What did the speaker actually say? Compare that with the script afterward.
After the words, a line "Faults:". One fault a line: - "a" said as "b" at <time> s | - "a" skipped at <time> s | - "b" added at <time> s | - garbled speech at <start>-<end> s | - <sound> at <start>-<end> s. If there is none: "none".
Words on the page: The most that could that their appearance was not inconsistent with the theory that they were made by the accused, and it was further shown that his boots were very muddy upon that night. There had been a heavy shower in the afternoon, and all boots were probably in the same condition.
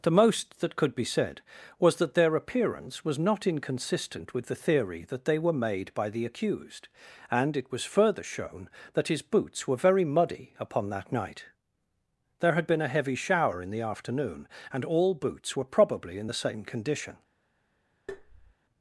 The most that could be said was that their appearance was not inconsistent with the theory that they were made by the accused, and it was further shown that his boots were very muddy upon that night. There had been a heavy shower in the afternoon, and all boots were probably in the same condition.
Faults:
- "be said was" added at 0.9 s
- tap at 18.1-18.5 s